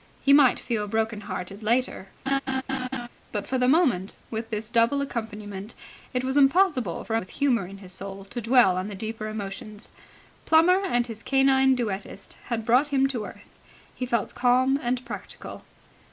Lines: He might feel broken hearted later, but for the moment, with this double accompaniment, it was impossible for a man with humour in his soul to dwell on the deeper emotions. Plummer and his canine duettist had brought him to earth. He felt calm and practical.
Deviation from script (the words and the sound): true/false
true